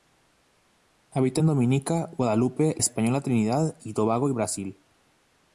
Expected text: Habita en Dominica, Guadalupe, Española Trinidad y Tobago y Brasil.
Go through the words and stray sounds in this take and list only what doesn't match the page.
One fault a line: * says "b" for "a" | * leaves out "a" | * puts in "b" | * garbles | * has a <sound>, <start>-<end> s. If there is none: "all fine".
all fine